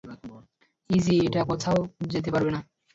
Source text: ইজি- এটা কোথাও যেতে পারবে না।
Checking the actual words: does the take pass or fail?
pass